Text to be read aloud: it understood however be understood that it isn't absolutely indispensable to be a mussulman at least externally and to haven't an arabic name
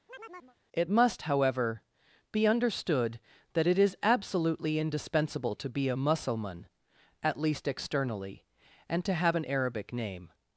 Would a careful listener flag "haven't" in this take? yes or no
yes